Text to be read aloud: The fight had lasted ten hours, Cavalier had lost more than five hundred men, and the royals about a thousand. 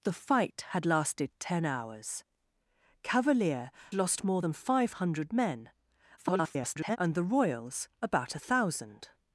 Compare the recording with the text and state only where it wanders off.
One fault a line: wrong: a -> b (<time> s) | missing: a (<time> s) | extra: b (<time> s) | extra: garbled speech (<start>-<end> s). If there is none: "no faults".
missing: had (3.7 s)
extra: garbled speech (6.2-7.0 s)